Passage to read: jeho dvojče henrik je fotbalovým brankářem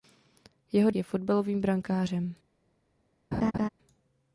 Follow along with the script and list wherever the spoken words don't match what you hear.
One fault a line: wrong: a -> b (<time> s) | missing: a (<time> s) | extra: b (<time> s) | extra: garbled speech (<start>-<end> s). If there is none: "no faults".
missing: dvojče henrik (0.9 s)